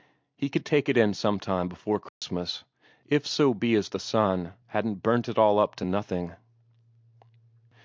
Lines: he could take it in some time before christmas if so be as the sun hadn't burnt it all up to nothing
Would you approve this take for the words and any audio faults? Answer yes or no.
no